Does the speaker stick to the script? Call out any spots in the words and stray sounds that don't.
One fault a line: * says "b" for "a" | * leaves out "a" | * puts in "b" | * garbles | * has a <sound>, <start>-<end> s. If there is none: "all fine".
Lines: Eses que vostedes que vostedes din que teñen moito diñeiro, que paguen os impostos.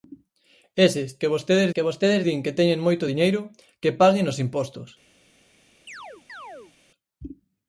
* has a chirp, 5.9-6.7 s